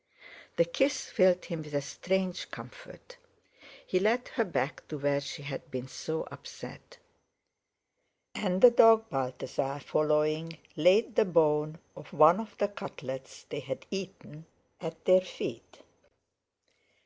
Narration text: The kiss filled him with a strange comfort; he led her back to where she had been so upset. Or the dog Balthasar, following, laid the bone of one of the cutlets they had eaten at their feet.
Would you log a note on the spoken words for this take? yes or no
yes